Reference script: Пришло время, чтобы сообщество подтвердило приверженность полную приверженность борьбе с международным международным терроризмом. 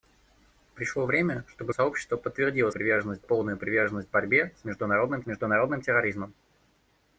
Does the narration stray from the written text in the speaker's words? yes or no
no